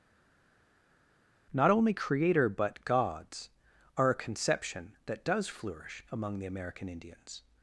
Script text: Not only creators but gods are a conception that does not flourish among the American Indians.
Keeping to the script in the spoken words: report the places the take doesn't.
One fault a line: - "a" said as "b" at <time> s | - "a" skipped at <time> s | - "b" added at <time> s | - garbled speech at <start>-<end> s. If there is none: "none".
- "creators" said as "creator" at 1.9 s
- "not" skipped at 5.5 s